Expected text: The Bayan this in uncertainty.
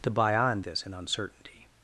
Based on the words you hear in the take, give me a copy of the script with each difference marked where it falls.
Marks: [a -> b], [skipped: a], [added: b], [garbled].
The Bayan this in uncertainty.